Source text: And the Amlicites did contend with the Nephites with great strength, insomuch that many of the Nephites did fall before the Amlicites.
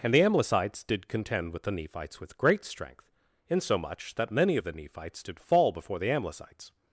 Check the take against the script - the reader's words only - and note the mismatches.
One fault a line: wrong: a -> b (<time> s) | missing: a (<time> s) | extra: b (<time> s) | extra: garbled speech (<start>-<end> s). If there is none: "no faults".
no faults